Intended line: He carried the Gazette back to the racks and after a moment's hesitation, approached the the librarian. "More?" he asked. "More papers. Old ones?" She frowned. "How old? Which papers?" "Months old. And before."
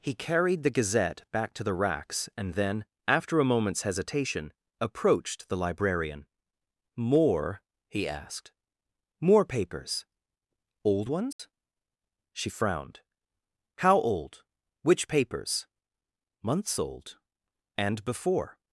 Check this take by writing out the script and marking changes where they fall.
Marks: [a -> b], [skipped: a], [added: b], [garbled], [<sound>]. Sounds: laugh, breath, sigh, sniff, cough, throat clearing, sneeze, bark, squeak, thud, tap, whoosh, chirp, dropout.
He carried the Gazette back to the racks and [added: then] after a moment's hesitation, approached the [skipped: the] librarian. "More?" he asked. "More papers. Old ones?" [dropout] She frowned. "How old? Which papers?" "Months old. And before."